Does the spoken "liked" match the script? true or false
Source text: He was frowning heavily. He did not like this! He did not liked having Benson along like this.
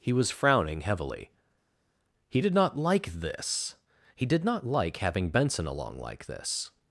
false